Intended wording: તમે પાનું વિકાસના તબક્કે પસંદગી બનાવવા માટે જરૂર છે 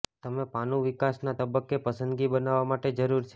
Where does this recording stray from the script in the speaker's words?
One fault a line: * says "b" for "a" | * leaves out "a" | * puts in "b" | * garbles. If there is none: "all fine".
all fine